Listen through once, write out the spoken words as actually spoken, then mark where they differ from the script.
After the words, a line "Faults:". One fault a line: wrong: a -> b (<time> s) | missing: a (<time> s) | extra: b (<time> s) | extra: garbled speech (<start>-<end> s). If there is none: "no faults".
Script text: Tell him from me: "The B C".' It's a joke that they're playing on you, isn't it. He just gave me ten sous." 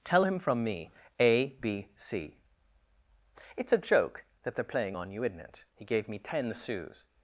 Tell him from me: "A B C".' It's a joke that they're playing on you, isn't it. He gave me ten sous."
Faults:
wrong: The -> A (1.2 s)
missing: just (5.8 s)